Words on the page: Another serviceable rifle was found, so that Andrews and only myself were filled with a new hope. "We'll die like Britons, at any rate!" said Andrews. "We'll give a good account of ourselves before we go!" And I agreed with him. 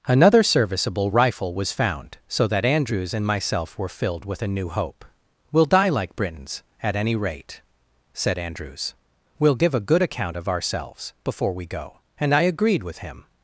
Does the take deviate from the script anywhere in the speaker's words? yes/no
yes